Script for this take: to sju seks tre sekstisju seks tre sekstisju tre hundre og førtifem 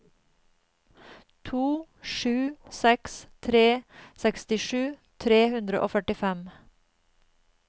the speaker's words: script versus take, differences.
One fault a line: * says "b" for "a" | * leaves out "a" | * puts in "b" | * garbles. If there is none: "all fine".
* leaves out "seks tre sekstisju"